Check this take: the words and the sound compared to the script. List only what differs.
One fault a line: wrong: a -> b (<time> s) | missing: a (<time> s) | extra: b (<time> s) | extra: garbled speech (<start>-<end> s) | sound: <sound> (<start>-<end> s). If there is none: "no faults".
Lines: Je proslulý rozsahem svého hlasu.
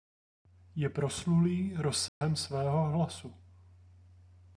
sound: dropout (2.1-2.2 s)